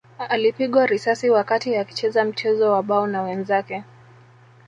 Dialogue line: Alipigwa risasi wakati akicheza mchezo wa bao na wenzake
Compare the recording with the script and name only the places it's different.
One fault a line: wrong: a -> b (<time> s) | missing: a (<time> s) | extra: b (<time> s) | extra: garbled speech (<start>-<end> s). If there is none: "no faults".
no faults